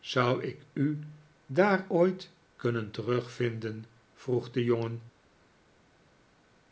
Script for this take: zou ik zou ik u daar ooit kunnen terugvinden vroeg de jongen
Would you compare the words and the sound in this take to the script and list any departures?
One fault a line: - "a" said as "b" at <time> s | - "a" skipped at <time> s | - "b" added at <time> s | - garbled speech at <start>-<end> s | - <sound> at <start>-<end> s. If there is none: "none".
- "zou ik" skipped at 0.6 s